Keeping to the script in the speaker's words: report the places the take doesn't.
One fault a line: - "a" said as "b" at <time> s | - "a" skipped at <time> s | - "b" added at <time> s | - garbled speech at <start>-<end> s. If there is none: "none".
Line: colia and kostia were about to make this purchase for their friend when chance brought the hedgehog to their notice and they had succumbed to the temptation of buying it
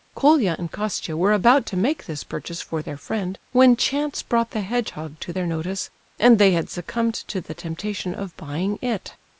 none